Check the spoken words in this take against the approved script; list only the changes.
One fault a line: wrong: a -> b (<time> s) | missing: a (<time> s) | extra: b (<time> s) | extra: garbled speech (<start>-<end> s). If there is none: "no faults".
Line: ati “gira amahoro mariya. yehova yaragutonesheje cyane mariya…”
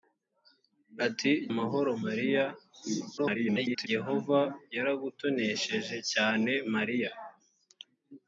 missing: gira (1.3 s)
extra: garbled speech (3.2-3.9 s)